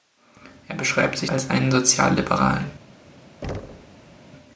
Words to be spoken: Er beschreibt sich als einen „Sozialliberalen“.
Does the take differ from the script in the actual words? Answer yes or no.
no